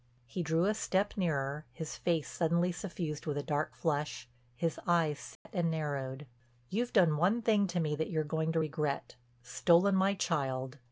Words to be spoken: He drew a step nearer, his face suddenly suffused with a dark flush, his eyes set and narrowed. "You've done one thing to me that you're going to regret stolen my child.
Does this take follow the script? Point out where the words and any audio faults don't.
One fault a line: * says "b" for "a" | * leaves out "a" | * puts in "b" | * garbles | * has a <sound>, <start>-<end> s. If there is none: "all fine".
* has a dropout, 5.4-5.5 s